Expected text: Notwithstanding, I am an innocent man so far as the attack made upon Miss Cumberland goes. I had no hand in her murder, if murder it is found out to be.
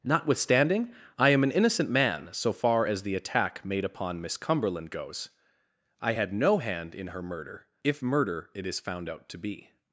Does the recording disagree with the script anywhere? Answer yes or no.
no